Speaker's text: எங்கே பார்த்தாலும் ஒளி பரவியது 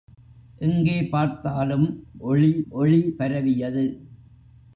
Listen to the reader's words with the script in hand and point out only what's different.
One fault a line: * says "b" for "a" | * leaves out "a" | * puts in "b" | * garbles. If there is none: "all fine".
* puts in "ஒளி"